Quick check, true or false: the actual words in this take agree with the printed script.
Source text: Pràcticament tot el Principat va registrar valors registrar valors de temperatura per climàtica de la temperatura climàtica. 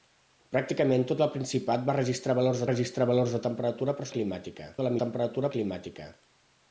true